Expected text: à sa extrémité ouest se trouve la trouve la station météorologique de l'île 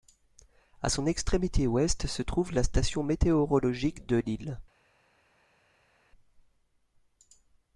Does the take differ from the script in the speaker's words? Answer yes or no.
yes